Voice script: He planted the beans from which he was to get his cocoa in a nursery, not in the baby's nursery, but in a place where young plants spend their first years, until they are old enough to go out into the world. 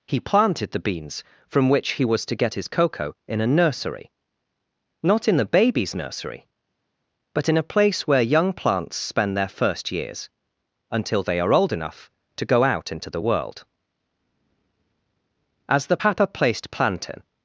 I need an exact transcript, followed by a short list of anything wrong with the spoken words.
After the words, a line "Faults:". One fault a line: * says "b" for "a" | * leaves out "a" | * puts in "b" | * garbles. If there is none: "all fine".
He planted the beans from which he was to get his cocoa in a nursery, not in the baby's nursery, but in a place where young plants spend their first years, until they are old enough to go out into the world. As the papa placed plantain
Faults:
* puts in "As the papa placed plantain"